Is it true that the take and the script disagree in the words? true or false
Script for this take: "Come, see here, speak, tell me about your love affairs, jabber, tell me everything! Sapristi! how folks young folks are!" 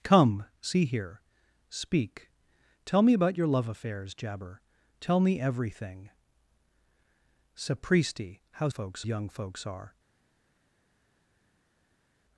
false